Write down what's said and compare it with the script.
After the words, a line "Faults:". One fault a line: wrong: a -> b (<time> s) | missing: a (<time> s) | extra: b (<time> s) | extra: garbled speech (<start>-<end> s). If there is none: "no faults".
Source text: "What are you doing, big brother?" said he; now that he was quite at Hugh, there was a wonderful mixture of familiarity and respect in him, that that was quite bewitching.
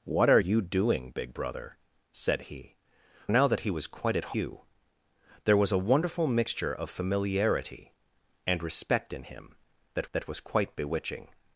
"What are you doing, big brother?" said he; now that he was quite at Hugh, there was a wonderful mixture of familiarity and respect in him, that that was quite bewitching.
Faults:
no faults